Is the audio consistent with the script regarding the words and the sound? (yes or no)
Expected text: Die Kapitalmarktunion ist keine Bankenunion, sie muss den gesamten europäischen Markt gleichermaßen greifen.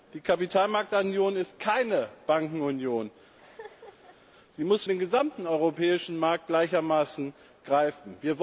no